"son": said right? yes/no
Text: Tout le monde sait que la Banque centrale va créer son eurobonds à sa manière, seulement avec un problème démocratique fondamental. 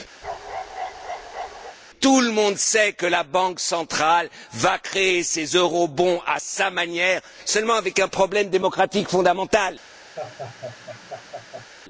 no